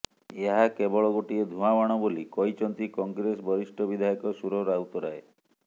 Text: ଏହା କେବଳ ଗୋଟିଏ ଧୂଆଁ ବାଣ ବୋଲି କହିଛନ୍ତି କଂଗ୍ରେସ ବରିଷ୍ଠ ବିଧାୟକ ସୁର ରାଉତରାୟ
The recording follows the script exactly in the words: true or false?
true